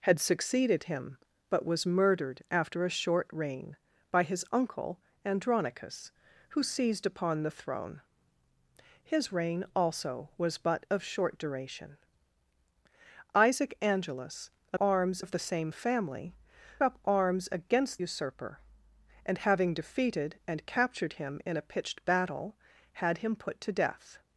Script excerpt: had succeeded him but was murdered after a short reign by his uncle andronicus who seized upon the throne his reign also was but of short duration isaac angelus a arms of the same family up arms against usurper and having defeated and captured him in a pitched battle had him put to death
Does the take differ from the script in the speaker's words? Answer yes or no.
no